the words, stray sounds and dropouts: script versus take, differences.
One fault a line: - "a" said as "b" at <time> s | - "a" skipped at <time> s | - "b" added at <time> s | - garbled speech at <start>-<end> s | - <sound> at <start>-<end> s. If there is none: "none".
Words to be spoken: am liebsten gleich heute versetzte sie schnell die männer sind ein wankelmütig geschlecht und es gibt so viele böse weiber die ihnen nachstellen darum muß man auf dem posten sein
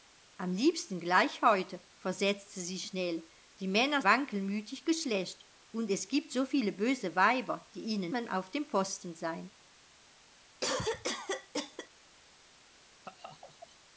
- "sind ein" skipped at 4.0 s
- "nachstellen darum muß" skipped at 8.1 s
- cough at 10.6-11.9 s
- laugh at 13.0-13.8 s